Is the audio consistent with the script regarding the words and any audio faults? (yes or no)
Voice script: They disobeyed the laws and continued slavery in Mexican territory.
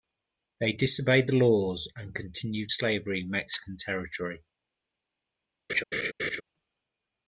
no